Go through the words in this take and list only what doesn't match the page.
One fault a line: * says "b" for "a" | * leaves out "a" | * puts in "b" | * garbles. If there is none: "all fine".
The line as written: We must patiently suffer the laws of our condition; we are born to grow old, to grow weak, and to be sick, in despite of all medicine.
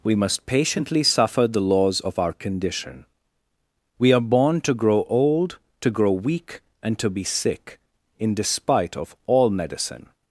all fine